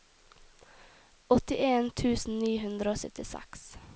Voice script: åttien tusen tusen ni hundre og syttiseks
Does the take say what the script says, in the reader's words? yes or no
no